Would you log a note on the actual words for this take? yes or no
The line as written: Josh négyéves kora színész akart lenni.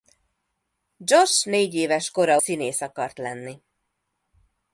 no